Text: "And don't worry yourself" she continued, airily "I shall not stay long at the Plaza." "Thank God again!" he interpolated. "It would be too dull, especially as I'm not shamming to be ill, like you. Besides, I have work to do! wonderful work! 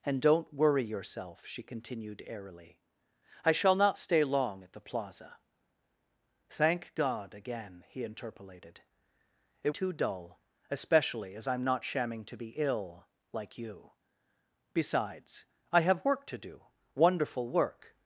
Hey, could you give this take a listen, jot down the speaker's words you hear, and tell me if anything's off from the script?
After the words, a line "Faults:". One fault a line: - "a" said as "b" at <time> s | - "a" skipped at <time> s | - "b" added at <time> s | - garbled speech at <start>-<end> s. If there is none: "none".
"And don't worry yourself" she continued, airily "I shall not stay long at the Plaza." "Thank God again!" he interpolated. "It too dull, especially as I'm not shamming to be ill, like you. Besides, I have work to do! wonderful work!
Faults:
- "would be" skipped at 9.8 s